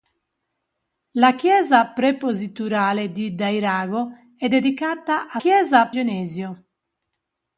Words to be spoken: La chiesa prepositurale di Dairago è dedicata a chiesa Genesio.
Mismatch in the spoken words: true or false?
false